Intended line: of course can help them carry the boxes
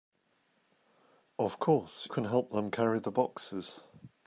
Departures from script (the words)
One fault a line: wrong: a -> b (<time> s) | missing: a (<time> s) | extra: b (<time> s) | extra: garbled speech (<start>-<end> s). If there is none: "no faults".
no faults